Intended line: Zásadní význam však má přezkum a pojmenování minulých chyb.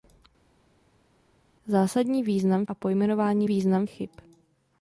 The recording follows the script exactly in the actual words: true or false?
false